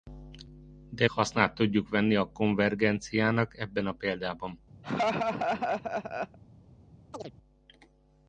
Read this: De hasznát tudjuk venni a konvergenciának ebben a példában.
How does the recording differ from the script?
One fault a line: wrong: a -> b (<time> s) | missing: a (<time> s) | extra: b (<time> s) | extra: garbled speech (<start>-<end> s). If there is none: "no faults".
no faults